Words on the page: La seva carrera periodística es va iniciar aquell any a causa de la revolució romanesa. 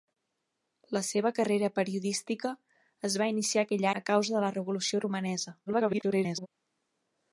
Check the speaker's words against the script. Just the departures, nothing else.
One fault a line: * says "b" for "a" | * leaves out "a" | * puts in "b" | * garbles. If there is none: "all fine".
* leaves out "any"
* garbles